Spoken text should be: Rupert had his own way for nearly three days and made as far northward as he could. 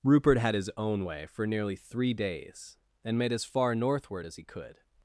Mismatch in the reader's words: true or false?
false